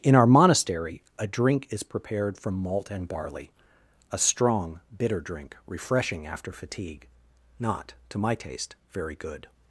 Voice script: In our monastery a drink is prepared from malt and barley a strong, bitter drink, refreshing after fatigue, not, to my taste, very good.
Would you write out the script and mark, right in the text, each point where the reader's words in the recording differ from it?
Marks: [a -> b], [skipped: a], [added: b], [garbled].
In our monastery a drink is prepared from malt and barley a strong, bitter drink, refreshing after fatigue, not, to my taste, very good.